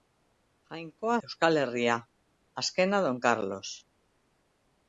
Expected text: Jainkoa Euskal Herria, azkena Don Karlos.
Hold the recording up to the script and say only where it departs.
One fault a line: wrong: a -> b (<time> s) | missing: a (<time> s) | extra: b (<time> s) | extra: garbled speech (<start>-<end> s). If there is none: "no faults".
no faults